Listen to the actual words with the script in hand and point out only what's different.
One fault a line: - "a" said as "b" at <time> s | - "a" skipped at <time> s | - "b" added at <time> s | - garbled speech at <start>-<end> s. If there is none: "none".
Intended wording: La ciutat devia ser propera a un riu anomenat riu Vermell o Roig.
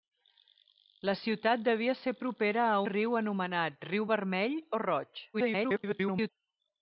- "un" skipped at 2.8 s
- garbled speech at 5.3-6.3 s